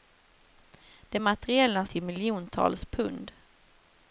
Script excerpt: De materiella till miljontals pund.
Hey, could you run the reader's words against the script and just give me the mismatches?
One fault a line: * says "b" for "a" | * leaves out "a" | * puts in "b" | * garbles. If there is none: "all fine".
all fine